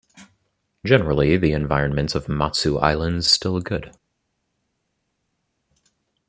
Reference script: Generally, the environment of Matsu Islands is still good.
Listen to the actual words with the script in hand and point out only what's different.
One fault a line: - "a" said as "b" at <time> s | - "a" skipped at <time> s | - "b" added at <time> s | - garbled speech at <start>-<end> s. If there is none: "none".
- "is" skipped at 3.3 s